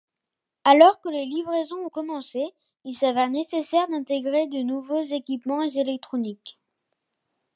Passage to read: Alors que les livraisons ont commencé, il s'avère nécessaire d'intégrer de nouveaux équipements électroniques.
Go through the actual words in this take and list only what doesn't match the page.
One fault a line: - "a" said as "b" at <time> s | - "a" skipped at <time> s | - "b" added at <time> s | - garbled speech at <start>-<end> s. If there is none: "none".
none